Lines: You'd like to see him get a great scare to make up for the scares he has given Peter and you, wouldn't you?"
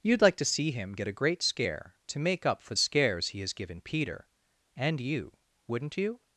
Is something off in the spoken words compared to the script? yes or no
yes